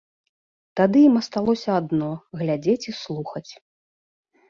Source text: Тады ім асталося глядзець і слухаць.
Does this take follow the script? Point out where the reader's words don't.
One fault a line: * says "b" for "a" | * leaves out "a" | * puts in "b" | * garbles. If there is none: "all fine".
* puts in "адно"